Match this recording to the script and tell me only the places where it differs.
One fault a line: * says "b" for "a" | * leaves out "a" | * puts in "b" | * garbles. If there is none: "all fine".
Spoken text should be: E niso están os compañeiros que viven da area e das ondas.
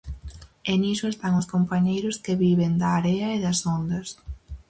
all fine